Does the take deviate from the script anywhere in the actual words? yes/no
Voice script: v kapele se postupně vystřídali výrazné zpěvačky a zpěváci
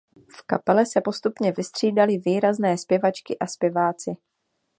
no